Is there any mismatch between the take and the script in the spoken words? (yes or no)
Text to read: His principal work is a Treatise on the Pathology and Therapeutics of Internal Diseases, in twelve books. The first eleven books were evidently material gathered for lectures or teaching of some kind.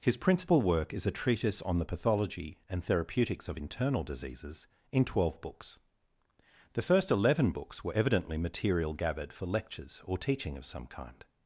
no